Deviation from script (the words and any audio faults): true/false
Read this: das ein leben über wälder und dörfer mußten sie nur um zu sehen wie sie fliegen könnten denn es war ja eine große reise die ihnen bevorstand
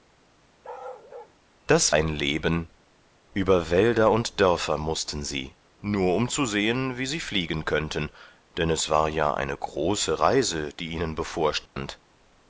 true